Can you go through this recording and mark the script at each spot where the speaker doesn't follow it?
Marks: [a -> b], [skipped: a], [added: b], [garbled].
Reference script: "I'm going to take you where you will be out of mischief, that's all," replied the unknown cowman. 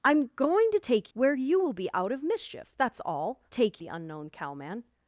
"I'm going to take [skipped: you] where you will be out of mischief, that's all," [replied -> take] the unknown cowman.